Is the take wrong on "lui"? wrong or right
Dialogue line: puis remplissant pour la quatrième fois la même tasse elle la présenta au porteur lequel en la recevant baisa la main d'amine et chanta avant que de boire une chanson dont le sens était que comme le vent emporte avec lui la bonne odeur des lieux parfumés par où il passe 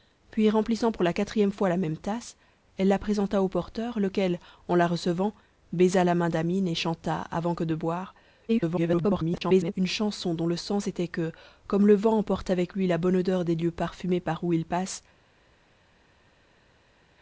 right